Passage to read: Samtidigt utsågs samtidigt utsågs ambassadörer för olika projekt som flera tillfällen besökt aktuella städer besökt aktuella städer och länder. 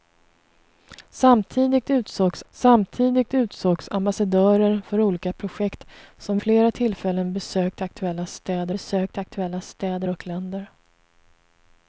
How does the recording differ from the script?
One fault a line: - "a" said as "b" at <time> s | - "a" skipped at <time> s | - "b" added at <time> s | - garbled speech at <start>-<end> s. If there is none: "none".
none